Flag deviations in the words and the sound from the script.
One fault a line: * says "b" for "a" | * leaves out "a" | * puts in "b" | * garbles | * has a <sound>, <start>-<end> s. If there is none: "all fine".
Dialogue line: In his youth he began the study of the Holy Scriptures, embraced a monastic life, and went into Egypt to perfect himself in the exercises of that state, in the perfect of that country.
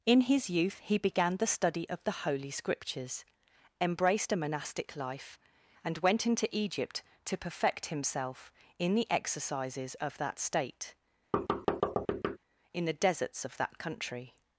* has a thud, 11.3-12.4 s
* says "deserts" for "perfect"